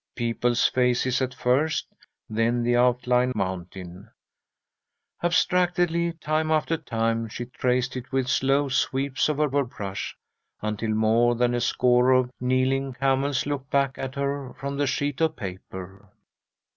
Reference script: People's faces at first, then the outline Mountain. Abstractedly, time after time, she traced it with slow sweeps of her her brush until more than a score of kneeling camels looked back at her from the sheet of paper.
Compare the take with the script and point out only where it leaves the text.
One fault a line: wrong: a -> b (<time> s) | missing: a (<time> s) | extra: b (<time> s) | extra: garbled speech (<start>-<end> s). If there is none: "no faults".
no faults